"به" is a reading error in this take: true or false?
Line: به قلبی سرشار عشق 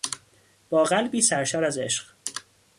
true